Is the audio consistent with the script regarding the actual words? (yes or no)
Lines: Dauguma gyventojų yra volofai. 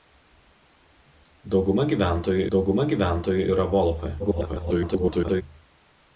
no